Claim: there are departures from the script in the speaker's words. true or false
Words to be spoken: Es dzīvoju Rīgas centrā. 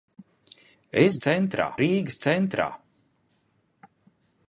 true